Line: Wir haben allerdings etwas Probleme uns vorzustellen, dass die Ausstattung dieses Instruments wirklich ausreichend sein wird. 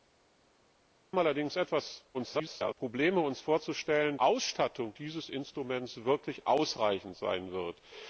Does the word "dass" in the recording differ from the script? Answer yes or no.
yes